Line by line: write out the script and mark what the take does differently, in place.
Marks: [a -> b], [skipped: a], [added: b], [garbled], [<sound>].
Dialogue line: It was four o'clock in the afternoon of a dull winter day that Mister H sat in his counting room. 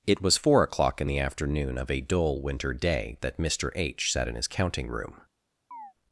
It was four o'clock in the afternoon of a dull winter day that Mister H sat in his counting room. [chirp]